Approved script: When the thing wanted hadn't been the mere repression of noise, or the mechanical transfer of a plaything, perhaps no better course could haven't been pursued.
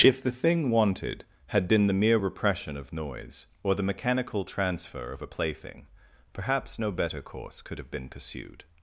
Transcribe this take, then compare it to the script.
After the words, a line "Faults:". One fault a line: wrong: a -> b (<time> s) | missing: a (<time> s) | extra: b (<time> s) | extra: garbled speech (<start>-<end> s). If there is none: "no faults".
If the thing wanted had been the mere repression of noise, or the mechanical transfer of a plaything, perhaps no better course could have been pursued.
Faults:
wrong: When -> If (0.0 s)
wrong: hadn't -> had (1.5 s)
wrong: haven't -> have (7.8 s)